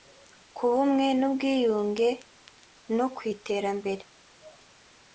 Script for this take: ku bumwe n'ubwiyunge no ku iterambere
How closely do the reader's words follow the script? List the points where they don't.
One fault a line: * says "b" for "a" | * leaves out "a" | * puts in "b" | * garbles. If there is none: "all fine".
all fine